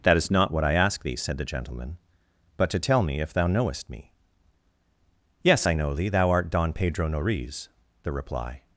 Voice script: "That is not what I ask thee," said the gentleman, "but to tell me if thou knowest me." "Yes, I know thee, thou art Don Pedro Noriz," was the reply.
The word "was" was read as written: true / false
false